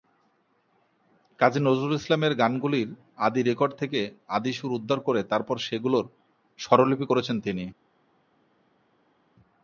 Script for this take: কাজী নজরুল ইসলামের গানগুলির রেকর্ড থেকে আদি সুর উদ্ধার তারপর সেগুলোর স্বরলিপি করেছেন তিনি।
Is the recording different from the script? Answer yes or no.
yes